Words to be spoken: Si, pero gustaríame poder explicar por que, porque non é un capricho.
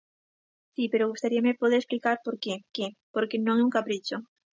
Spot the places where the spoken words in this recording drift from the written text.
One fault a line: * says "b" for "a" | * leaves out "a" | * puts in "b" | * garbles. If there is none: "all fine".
* puts in "que"